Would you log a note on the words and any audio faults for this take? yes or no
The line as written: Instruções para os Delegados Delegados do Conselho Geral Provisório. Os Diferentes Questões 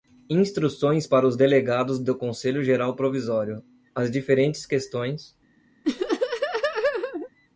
yes